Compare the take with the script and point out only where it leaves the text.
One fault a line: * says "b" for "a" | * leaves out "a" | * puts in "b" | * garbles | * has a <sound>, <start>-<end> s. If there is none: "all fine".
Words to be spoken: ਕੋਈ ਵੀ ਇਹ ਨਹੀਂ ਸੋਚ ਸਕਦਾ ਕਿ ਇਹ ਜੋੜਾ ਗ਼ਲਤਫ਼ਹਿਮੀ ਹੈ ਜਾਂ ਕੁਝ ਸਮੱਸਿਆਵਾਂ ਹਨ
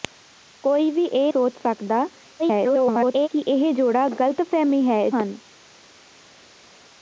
* leaves out "ਨਹੀਂ"
* garbles
* leaves out "ਜਾਂ ਕੁਝ ਸਮੱਸਿਆਵਾਂ"